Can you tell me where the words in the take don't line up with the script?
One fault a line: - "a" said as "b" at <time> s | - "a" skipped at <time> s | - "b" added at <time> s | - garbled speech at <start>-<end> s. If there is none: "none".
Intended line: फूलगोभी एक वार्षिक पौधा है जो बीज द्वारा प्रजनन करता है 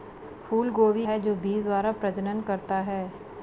- "एक वार्षिक पौधा" skipped at 1.1 s